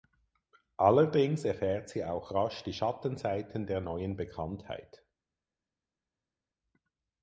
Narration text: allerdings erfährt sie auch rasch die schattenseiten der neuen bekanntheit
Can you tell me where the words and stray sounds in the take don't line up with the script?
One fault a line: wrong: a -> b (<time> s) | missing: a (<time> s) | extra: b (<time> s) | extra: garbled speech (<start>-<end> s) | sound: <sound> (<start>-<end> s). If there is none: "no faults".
no faults